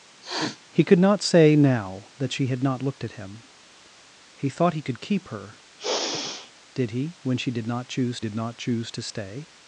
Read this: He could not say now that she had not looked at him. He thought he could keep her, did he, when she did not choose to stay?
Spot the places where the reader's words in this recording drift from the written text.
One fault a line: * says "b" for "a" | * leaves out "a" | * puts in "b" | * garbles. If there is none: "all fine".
* puts in "did not choose"